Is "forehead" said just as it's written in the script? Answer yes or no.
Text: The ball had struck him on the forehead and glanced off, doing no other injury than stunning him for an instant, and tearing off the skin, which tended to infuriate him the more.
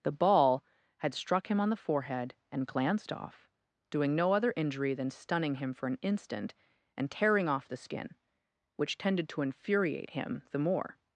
yes